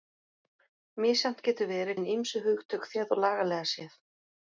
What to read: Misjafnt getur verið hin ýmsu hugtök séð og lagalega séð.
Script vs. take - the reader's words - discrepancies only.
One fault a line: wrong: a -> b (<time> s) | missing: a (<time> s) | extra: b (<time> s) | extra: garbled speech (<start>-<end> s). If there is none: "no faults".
no faults